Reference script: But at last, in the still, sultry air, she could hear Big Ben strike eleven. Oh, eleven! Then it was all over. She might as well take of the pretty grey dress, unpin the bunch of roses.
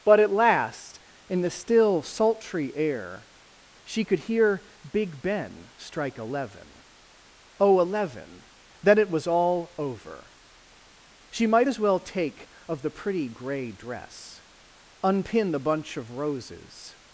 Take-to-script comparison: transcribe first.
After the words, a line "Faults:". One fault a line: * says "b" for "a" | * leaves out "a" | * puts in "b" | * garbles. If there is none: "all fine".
But at last, in the still, sultry air, she could hear Big Ben strike eleven. Oh, eleven! Then it was all over. She might as well take of the pretty grey dress, unpin the bunch of roses.
Faults:
all fine